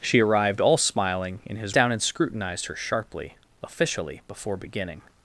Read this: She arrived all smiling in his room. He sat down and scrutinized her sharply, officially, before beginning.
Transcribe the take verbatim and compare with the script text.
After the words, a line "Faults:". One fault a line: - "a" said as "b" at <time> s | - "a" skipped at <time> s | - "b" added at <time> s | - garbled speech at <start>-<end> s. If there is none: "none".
She arrived all smiling in his down and scrutinized her sharply, officially, before beginning.
Faults:
- "room He sat" skipped at 1.8 s